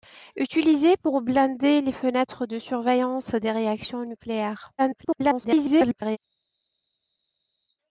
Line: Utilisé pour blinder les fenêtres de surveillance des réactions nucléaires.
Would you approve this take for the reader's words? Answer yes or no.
no